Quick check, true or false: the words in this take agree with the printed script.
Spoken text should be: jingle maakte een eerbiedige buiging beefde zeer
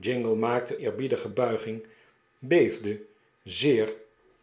false